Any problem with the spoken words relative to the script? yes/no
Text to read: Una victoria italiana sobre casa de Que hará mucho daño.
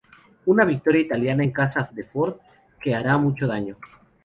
yes